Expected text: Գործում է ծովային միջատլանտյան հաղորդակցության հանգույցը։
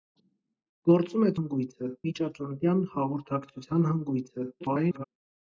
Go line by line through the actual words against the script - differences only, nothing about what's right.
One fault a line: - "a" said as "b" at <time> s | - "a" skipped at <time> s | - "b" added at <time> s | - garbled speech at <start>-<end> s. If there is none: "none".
- "ծովային" said as "հանգույցը" at 1.4 s
- garbled speech at 4.6-5.0 s